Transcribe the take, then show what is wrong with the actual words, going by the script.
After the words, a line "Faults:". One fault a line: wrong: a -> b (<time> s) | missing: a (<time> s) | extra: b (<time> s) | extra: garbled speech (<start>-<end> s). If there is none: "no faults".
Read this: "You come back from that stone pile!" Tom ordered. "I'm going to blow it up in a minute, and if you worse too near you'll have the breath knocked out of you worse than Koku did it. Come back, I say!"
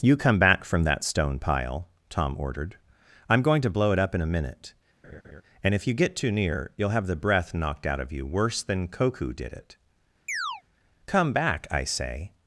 "You come back from that stone pile!" Tom ordered. "I'm going to blow it up in a minute, and if you get too near you'll have the breath knocked out of you worse than Koku did it. Come back, I say!"
Faults:
wrong: worse -> get (5.9 s)